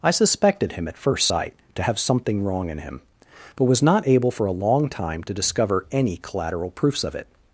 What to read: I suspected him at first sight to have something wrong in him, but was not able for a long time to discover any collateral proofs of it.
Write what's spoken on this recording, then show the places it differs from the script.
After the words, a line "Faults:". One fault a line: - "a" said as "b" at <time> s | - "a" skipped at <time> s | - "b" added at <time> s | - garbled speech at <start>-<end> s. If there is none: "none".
I suspected him at first sight to have something wrong in him, but was not able for a long time to discover any collateral proofs of it.
Faults:
none